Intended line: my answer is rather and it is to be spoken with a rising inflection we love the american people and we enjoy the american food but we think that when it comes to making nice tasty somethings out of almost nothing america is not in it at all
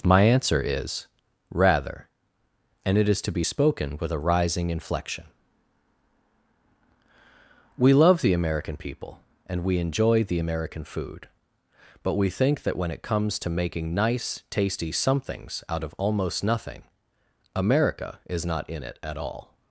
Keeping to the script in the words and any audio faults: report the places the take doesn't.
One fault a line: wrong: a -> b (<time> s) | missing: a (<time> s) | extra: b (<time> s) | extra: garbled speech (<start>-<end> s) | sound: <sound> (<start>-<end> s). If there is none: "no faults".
no faults